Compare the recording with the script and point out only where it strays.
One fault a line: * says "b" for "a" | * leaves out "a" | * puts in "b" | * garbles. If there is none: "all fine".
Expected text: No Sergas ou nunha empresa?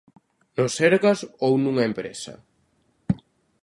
all fine